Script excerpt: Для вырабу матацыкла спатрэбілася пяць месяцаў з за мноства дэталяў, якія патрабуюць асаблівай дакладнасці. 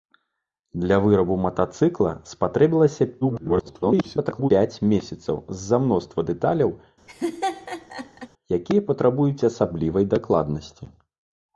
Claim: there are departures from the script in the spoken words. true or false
true